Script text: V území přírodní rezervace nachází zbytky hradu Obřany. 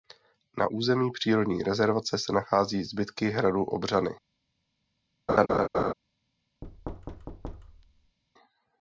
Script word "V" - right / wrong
wrong